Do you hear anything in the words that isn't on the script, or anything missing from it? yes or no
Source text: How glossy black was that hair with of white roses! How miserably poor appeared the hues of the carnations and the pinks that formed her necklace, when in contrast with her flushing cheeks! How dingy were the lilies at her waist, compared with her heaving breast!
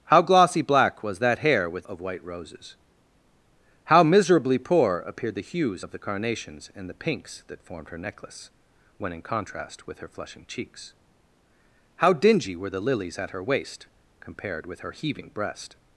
no